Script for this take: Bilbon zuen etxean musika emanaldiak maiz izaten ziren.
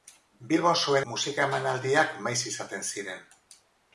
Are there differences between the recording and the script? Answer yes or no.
yes